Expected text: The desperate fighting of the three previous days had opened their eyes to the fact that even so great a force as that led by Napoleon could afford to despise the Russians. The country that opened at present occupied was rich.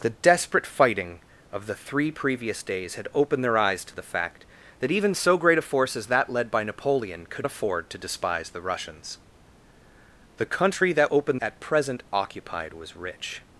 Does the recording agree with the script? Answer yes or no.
yes